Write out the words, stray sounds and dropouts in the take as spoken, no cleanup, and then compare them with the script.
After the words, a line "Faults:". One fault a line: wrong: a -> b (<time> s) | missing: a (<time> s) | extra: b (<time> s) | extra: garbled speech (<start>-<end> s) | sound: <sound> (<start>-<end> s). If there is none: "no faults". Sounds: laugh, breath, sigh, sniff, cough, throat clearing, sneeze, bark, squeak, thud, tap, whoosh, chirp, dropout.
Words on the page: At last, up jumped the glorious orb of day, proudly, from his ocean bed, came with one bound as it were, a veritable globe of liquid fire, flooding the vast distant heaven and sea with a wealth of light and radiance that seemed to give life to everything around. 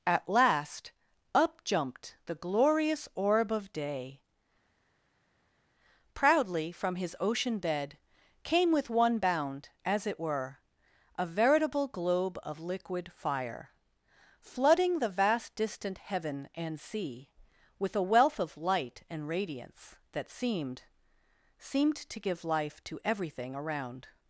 At last, up jumped the glorious orb of day, proudly, from his ocean bed, came with one bound as it were, a veritable globe of liquid fire, flooding the vast distant heaven and sea with a wealth of light and radiance that seemed seemed to give life to everything around.
Faults:
extra: seemed (21.6 s)